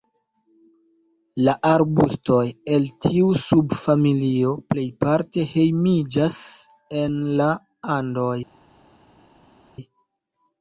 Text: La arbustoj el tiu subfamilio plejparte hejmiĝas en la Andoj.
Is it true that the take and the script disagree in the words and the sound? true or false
false